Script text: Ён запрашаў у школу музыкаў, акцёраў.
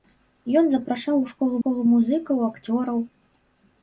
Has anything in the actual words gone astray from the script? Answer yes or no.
yes